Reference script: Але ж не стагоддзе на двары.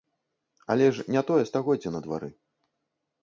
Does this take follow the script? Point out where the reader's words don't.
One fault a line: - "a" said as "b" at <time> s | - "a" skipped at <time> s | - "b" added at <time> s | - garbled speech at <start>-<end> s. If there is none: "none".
- "тое" added at 1.3 s